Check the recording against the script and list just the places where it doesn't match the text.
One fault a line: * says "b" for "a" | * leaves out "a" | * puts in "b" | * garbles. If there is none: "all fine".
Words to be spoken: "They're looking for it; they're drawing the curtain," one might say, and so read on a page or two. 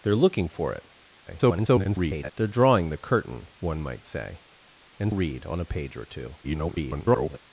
* garbles
* leaves out "so"
* garbles